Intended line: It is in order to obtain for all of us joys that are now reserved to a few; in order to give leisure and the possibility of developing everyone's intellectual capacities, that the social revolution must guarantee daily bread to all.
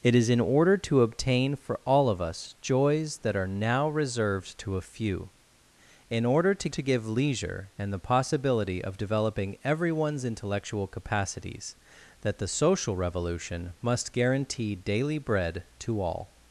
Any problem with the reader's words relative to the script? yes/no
yes